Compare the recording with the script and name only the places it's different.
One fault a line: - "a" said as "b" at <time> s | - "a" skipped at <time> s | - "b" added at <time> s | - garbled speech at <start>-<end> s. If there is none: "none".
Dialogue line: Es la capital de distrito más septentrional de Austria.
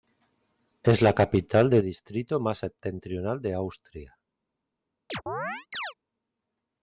none